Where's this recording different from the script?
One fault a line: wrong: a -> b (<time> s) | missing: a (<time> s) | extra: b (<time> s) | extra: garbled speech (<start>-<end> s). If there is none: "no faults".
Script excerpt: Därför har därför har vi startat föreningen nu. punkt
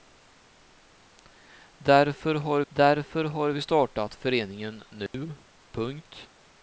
no faults